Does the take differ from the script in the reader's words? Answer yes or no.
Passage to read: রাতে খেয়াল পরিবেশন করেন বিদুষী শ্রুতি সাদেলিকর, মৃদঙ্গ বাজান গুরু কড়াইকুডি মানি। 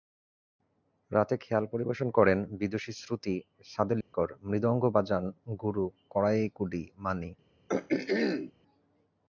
no